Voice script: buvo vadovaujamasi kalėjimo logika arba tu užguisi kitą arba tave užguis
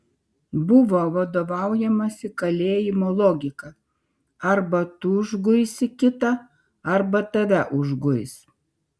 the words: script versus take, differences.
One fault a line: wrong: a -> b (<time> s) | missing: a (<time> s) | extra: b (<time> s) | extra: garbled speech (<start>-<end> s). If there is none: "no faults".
no faults